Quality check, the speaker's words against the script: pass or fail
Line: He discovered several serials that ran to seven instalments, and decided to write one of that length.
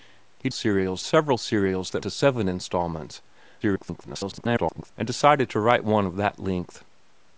fail